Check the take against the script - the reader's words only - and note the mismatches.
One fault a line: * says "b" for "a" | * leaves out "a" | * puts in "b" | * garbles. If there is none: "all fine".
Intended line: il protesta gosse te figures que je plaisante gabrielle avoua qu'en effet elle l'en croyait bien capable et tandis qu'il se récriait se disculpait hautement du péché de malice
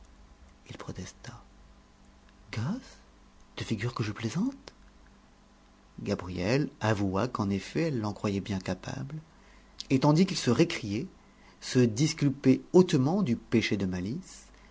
all fine